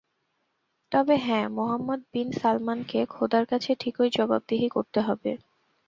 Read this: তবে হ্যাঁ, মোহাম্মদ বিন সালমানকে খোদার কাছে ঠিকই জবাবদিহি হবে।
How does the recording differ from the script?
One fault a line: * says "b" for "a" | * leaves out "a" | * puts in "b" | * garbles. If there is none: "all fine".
* puts in "করতে"